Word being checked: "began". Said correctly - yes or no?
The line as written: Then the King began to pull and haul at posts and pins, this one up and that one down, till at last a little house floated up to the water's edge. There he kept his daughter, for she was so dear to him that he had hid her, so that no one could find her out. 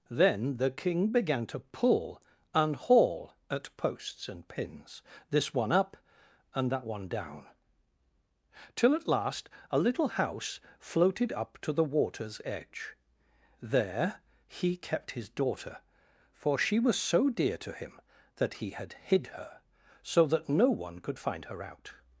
yes